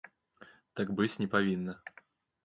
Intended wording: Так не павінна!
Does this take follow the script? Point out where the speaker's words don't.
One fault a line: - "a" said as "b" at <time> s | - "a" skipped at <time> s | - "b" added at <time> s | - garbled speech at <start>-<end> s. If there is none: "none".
- "быць" added at 1.0 s